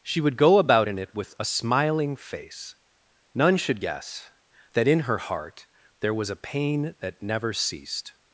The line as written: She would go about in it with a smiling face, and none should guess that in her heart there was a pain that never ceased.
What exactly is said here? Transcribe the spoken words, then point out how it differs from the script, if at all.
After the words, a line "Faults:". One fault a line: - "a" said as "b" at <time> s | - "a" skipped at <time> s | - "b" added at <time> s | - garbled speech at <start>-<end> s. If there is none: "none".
She would go about in it with a smiling face, none should guess that in her heart there was a pain that never ceased.
Faults:
- "and" skipped at 2.7 s